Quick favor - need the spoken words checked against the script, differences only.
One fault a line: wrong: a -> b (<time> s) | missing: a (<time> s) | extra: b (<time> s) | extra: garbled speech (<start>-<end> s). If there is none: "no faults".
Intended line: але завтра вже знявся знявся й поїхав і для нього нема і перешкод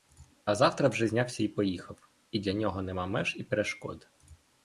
wrong: але -> а (0.5 s)
missing: знявся (1.4 s)
extra: меж (3.1 s)